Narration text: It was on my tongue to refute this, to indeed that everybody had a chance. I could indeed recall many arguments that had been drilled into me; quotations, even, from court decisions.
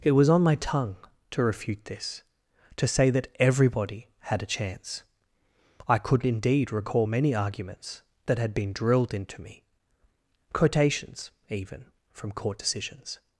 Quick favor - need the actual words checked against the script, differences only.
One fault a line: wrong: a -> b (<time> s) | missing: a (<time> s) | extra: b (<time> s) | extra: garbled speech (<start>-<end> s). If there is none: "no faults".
wrong: indeed -> say (2.9 s)